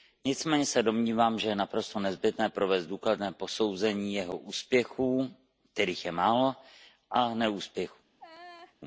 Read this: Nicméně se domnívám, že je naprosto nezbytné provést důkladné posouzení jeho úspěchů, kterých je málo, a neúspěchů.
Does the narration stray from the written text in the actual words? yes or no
no